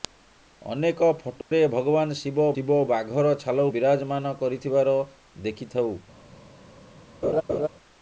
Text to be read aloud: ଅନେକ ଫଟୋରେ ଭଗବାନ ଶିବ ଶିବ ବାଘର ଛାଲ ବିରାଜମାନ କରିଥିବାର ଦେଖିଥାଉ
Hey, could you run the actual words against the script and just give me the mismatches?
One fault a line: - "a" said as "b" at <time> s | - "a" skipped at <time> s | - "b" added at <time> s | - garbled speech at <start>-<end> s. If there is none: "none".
none